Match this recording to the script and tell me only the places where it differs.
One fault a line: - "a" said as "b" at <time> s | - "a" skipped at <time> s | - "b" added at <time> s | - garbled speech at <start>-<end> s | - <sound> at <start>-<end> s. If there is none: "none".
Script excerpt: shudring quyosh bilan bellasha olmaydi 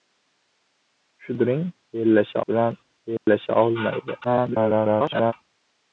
- "quyosh" said as "bellasha" at 1.9 s
- dropout at 3.2-3.3 s
- garbled speech at 4.2-5.3 s